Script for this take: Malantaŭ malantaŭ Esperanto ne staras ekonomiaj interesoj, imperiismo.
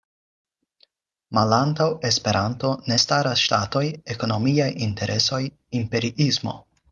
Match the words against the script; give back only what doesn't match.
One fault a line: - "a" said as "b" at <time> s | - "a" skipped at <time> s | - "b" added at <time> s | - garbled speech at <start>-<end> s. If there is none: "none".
- "malantaŭ" skipped at 1.9 s
- "ŝtatoj" added at 3.4 s